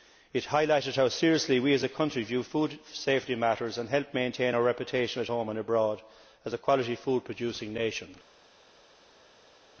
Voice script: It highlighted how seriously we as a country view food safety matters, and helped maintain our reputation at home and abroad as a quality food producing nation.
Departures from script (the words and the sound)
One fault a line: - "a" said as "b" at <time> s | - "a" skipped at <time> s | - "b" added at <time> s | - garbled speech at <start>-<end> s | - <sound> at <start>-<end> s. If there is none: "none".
none